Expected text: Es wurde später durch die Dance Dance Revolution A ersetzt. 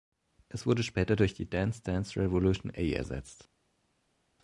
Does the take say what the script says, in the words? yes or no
yes